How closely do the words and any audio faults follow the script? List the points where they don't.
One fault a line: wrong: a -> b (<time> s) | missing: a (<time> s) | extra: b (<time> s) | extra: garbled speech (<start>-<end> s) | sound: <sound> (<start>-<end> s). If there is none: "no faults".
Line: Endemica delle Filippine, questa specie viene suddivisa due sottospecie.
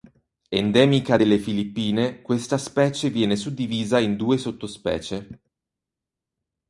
extra: in (4.0 s)